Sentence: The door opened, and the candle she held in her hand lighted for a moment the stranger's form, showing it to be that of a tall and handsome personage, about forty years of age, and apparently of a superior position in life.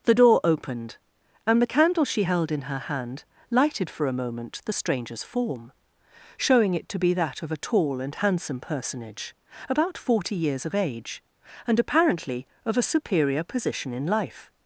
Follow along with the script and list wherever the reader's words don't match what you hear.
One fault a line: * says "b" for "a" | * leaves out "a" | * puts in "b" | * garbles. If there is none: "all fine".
all fine